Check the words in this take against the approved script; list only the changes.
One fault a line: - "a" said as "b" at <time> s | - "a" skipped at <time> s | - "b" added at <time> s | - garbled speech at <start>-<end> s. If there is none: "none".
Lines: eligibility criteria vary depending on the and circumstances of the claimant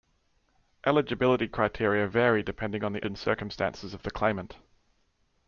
none